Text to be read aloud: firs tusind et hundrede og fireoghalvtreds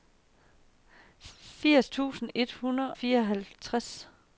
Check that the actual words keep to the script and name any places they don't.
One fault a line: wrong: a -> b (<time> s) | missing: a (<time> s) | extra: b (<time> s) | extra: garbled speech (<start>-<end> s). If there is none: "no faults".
missing: og (2.9 s)